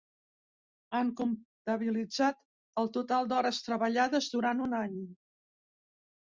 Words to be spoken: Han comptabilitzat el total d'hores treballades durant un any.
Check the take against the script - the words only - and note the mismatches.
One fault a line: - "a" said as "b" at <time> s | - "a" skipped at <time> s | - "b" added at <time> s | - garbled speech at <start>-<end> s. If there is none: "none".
none